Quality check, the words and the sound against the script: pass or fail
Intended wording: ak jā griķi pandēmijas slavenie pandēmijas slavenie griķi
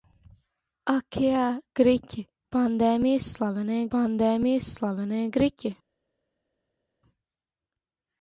pass